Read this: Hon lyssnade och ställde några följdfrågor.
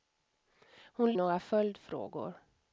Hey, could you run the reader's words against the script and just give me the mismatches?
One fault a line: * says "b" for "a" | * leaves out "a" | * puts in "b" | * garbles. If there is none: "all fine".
* leaves out "lyssnade och ställde"